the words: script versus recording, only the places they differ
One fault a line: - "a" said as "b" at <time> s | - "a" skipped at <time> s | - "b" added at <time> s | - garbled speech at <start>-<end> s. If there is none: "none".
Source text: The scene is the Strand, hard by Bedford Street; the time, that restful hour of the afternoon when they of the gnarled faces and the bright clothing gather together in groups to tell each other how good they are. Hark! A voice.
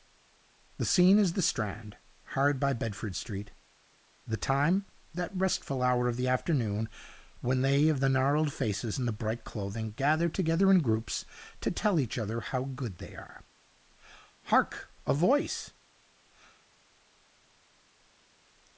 none